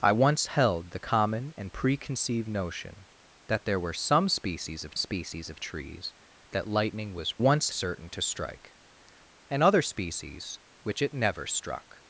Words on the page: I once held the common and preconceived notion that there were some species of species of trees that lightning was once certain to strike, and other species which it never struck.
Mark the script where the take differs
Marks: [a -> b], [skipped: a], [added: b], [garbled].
I once held the common and preconceived notion that there were some species of species of trees that lightning was once certain to strike, and other species which it never struck.